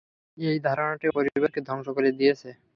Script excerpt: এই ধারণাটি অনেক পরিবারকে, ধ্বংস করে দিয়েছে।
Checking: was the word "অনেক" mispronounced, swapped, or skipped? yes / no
yes